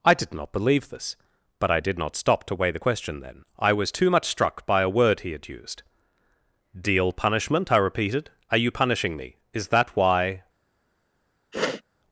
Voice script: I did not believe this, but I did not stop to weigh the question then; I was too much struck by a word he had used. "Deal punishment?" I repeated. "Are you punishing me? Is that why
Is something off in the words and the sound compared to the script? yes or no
yes